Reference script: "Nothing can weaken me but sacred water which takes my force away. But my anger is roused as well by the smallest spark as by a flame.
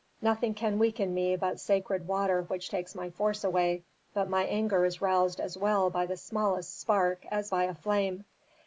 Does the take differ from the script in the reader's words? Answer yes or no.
no